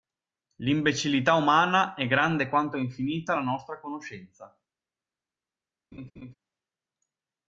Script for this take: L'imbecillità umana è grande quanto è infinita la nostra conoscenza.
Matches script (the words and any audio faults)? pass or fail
fail